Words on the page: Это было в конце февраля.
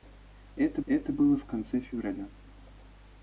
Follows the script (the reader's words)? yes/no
no